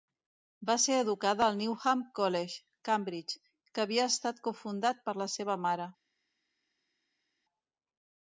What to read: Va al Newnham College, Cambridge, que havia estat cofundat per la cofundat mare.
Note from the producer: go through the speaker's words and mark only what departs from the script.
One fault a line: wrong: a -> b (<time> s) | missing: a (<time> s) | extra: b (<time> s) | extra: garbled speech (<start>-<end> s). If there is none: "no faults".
extra: ser educada (0.8 s)
wrong: cofundat -> seva (5.3 s)